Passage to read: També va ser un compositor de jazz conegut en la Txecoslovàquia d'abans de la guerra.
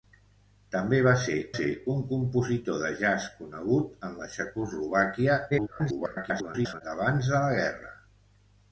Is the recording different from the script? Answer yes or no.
yes